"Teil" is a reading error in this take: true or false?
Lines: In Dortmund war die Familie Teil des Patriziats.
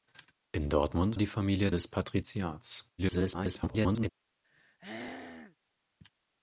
true